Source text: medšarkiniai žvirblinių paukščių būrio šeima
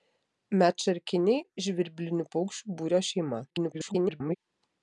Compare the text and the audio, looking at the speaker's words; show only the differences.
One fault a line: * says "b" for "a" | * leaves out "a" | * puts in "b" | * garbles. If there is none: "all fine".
* garbles